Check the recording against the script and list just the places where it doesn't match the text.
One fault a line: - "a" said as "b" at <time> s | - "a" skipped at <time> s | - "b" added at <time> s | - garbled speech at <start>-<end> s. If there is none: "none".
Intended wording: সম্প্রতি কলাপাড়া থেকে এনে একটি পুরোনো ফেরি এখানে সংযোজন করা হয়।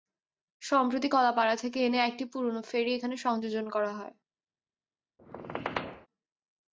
none